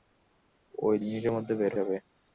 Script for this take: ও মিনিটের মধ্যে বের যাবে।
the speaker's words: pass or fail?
pass